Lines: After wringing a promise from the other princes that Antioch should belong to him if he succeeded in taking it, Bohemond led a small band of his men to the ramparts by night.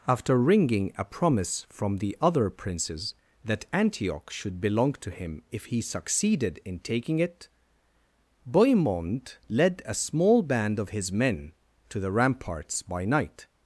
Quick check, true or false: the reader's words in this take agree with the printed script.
true